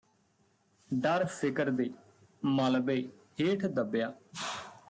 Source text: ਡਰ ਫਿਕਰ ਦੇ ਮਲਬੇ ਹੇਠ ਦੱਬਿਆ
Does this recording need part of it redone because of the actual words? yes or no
no